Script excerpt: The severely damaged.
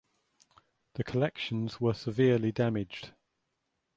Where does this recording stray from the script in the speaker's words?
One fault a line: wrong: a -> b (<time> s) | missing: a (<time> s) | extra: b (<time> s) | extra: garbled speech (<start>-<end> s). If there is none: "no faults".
extra: collections were (1.0 s)